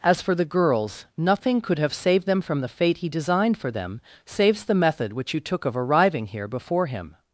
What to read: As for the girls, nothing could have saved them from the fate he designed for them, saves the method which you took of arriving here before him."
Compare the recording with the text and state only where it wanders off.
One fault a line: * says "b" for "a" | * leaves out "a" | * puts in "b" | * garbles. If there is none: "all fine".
all fine